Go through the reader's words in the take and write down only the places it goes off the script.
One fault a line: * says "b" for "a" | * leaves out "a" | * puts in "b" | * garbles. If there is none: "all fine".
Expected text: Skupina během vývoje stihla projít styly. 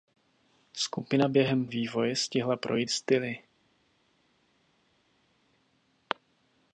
all fine